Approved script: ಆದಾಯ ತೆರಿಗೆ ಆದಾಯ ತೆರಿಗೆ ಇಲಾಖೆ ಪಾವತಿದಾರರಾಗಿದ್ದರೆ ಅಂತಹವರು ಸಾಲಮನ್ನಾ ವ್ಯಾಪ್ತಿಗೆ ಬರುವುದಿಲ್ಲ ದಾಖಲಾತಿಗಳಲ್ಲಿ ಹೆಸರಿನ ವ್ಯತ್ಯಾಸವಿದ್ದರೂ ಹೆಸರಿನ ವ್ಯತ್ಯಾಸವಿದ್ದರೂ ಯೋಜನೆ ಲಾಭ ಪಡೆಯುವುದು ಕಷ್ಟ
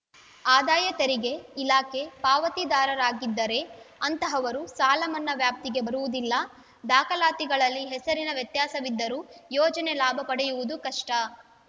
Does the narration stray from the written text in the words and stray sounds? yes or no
yes